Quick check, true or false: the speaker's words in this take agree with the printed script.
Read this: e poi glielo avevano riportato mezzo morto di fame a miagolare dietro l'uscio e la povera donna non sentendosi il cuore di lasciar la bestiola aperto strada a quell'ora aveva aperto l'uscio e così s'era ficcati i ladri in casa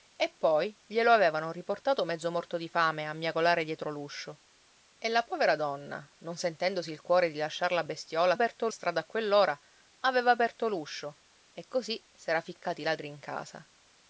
true